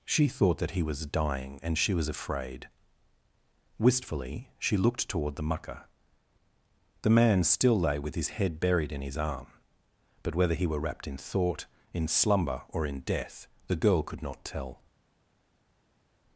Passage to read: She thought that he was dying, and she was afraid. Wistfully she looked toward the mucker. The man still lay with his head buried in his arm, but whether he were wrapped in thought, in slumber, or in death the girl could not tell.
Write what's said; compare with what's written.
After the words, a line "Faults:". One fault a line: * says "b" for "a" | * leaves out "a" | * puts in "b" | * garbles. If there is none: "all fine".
She thought that he was dying, and she was afraid. Wistfully she looked toward the mucker. The man still lay with his head buried in his arm, but whether he were wrapped in thought, in slumber, or in death the girl could not tell.
Faults:
all fine